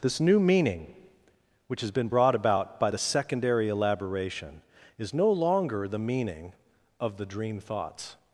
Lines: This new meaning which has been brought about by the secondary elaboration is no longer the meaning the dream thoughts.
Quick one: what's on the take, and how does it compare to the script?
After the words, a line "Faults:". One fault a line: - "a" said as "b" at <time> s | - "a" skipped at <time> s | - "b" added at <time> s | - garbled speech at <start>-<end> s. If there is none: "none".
This new meaning which has been brought about by the secondary elaboration is no longer the meaning of the dream thoughts.
Faults:
- "of" added at 7.0 s